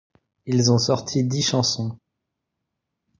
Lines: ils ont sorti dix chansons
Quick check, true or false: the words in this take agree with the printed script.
true